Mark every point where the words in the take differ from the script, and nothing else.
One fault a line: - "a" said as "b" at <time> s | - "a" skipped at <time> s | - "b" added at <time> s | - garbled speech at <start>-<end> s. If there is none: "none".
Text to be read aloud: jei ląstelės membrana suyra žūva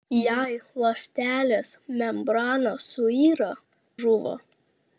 none